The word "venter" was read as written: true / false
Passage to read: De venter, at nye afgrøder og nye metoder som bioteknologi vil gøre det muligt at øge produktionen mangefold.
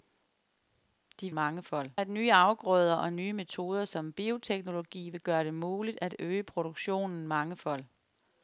false